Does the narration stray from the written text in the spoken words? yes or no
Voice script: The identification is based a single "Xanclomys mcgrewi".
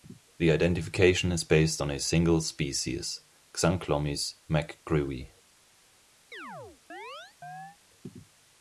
yes